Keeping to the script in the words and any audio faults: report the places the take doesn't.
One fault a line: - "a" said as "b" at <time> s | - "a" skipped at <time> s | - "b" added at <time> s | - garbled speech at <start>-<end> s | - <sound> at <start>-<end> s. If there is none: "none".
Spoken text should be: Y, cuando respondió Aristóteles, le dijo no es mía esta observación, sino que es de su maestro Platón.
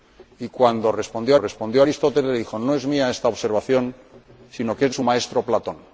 - "respondió" added at 1.4 s
- "de" skipped at 4.9 s